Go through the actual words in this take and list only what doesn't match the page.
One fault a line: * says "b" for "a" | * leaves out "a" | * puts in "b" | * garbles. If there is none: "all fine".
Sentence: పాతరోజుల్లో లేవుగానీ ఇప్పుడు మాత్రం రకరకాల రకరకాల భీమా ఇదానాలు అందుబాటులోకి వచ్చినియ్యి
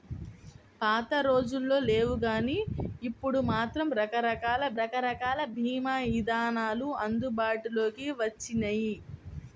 all fine